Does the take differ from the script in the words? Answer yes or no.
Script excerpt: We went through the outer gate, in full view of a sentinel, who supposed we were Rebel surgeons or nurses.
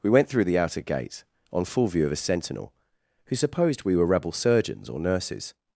yes